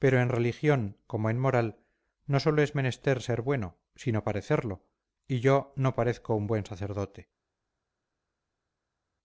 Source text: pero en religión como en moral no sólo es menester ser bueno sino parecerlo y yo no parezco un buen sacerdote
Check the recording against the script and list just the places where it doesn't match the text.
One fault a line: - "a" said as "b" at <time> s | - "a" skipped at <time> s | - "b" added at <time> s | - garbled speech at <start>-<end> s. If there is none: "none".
none